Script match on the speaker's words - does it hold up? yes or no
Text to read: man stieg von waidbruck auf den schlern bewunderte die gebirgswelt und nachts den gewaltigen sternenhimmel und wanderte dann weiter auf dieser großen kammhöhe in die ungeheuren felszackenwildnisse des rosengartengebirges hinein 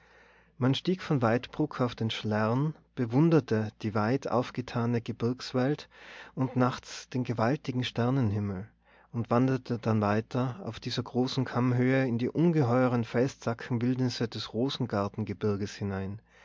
no